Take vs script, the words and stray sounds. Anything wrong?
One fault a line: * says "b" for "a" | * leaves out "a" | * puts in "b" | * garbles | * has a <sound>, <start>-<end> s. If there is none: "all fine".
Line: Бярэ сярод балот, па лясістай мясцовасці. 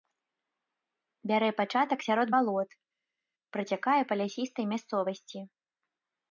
* puts in "пачатак"
* puts in "працякае"